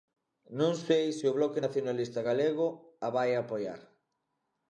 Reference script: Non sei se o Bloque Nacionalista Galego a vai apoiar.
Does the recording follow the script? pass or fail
pass